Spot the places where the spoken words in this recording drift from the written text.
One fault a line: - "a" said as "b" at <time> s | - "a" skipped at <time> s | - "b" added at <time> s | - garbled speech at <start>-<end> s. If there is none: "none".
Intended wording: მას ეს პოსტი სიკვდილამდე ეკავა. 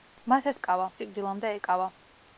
- "პოსტი" said as "ეკავა" at 0.6 s